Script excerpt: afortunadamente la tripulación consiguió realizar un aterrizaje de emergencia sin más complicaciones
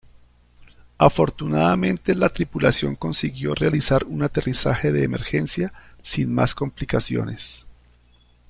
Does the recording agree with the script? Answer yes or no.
yes